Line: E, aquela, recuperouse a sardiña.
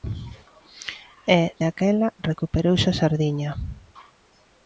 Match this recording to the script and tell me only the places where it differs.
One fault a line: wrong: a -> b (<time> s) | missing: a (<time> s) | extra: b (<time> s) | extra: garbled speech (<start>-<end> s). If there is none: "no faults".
no faults